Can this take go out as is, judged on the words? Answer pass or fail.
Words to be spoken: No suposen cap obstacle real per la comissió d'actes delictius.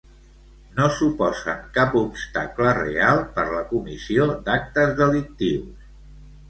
pass